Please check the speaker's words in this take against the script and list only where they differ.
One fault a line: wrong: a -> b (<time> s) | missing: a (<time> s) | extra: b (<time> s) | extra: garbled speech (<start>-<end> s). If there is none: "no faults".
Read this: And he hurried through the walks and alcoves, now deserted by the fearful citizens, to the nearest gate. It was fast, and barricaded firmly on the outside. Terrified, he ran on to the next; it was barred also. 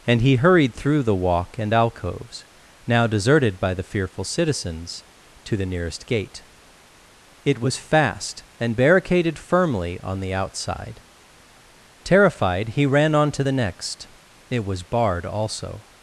wrong: walks -> walk (1.1 s)